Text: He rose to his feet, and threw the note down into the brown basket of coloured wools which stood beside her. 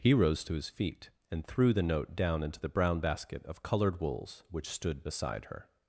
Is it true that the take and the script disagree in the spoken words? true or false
false